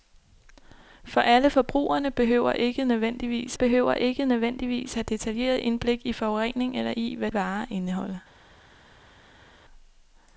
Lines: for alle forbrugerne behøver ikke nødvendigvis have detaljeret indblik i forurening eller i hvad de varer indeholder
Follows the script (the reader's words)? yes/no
no